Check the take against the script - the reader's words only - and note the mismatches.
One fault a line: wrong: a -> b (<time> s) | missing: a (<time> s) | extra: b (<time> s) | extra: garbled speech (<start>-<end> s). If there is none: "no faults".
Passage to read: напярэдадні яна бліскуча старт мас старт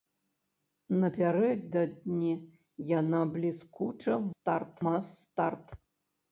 no faults